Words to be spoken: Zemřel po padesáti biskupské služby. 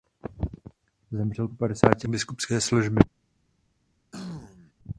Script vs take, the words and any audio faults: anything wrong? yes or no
yes